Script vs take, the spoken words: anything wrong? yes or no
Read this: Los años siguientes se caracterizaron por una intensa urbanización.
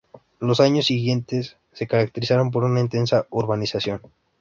no